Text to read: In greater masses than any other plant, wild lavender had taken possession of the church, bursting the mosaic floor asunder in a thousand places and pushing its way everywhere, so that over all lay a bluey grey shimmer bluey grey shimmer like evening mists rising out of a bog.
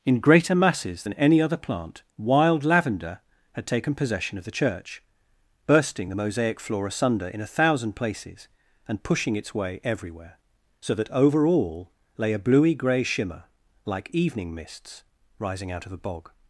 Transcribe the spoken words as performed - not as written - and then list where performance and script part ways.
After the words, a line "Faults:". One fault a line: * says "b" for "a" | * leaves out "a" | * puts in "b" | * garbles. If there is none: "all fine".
In greater masses than any other plant, wild lavender had taken possession of the church, bursting the mosaic floor asunder in a thousand places and pushing its way everywhere, so that over all lay a bluey grey shimmer like evening mists rising out of a bog.
Faults:
* leaves out "bluey grey shimmer"